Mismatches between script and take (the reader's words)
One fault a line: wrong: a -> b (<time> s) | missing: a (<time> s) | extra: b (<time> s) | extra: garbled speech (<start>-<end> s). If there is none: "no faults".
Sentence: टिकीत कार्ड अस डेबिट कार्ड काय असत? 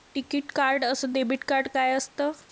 no faults